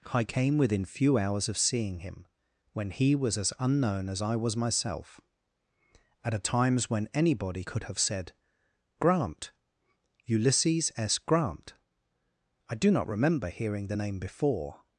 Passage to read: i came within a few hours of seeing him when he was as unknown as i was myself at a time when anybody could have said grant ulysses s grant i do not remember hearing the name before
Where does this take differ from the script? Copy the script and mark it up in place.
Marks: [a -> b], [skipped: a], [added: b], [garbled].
i came within [skipped: a] few hours of seeing him when he was as unknown as i was myself at a [time -> times] when anybody could have said grant ulysses s grant i do not remember hearing the name before